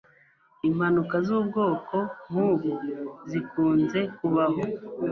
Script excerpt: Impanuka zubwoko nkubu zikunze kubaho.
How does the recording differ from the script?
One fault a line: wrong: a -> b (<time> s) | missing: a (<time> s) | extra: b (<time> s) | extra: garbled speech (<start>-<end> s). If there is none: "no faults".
no faults